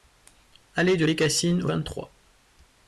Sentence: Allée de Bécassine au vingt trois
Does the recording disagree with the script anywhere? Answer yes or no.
no